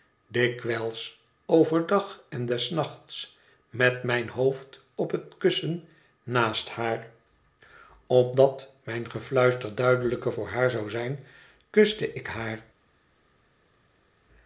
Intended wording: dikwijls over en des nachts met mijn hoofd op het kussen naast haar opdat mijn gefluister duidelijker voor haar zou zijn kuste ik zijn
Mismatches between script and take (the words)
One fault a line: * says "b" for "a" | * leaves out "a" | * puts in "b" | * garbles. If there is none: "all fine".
* puts in "dag"
* says "haar" for "zijn"